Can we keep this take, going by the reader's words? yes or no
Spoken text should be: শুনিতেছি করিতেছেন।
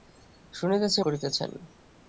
yes